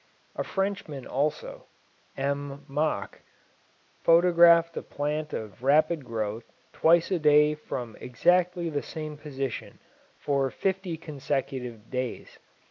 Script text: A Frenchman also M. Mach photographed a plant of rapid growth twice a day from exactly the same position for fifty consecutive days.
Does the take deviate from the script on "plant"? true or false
false